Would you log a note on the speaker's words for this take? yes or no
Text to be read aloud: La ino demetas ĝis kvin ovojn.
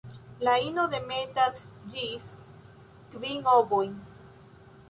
no